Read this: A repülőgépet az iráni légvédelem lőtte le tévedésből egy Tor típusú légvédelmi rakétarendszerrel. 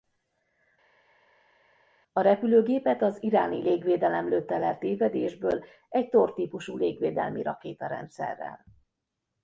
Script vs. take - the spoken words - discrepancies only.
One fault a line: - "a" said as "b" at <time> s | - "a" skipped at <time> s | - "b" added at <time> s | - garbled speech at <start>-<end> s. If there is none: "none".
none